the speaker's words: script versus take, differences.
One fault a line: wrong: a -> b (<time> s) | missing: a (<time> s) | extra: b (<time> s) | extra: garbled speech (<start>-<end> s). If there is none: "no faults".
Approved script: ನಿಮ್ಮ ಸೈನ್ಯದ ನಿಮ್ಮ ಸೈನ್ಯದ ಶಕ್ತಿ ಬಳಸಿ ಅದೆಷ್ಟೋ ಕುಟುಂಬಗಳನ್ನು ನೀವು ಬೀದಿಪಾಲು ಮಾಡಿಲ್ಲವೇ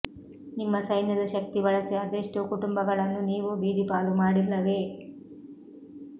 missing: ನಿಮ್ಮ ಸೈನ್ಯದ (1.2 s)